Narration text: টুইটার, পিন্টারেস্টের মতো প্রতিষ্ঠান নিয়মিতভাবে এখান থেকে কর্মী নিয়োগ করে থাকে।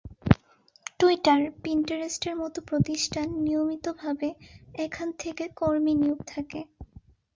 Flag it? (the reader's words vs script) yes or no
yes